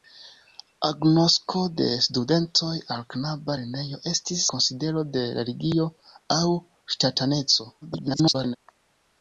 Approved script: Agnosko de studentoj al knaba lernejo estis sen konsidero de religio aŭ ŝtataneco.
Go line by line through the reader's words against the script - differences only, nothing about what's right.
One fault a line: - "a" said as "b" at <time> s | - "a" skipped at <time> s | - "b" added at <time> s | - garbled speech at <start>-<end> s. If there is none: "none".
- "sen" skipped at 4.5 s
- garbled speech at 7.8-8.6 s